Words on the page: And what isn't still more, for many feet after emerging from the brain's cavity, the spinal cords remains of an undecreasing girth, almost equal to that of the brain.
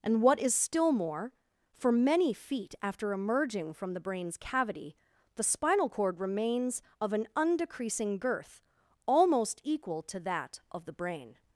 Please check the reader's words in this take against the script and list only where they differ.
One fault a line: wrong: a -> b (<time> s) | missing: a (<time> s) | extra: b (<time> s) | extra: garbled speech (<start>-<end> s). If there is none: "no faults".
wrong: isn't -> is (0.4 s)
wrong: cords -> cord (5.9 s)